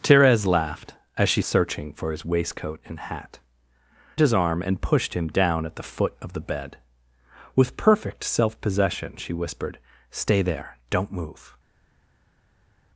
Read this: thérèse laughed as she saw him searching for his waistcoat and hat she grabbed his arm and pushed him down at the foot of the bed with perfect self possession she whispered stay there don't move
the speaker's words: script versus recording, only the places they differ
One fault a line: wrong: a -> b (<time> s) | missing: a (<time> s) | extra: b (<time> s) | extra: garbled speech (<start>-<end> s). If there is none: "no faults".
missing: saw him (1.4 s)
missing: she grabbed (3.4 s)